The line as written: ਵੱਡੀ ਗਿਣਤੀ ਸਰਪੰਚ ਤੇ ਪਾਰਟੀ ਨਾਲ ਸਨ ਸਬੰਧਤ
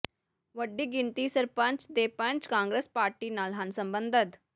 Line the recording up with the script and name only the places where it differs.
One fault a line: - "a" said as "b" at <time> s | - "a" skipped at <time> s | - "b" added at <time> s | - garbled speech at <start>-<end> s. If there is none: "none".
- "ਪੰਚ ਕਾਂਗਰਸ" added at 2.1 s
- "ਸਨ" said as "ਹਨ" at 3.5 s